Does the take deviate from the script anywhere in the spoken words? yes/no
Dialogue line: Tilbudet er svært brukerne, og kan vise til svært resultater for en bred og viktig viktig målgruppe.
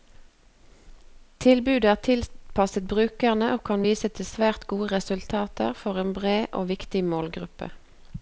yes